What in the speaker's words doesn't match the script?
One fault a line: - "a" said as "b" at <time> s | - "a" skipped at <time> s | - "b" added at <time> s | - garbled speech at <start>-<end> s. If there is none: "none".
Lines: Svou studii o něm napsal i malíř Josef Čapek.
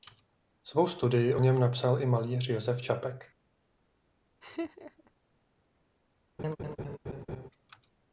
none